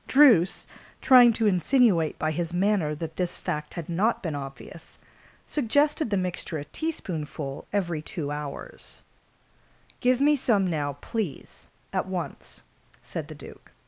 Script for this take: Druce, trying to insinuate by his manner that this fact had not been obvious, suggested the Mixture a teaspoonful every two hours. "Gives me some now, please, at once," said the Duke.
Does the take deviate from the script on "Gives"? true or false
true